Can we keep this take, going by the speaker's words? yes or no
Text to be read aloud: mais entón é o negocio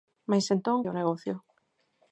yes